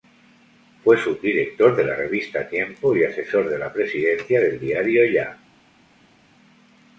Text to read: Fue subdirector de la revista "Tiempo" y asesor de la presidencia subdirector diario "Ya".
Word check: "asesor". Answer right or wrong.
right